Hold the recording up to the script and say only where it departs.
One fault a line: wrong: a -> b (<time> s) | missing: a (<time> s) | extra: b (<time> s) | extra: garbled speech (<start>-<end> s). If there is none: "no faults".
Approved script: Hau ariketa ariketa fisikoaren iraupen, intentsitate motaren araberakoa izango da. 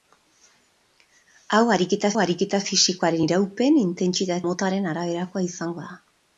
no faults